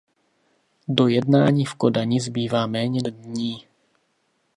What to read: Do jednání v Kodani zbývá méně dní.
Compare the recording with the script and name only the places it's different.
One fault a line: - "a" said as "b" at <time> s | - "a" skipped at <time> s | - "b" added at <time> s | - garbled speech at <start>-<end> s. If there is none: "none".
none